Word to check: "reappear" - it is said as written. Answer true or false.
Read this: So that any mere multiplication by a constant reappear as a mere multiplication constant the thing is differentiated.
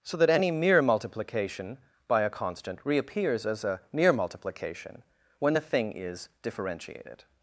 false